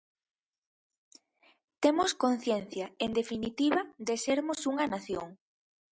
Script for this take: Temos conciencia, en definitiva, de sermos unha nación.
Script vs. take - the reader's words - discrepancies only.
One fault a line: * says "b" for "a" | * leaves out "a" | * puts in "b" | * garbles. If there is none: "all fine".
all fine